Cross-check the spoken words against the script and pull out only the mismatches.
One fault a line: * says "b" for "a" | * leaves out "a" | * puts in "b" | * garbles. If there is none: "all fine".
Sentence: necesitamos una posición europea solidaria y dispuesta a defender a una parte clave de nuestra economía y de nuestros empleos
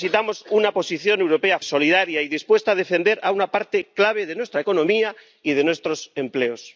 all fine